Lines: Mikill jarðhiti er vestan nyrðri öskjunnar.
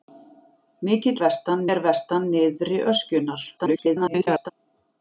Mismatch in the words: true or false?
true